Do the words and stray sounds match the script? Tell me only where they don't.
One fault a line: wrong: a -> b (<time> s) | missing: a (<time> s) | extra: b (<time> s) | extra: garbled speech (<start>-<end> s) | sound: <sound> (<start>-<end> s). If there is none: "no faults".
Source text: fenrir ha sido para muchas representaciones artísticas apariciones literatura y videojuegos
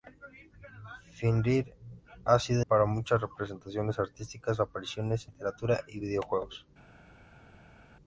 no faults